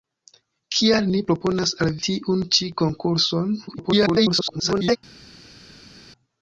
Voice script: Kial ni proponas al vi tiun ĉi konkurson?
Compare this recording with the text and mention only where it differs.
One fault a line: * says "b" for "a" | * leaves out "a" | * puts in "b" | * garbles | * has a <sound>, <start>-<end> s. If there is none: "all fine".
* leaves out "vi"
* garbles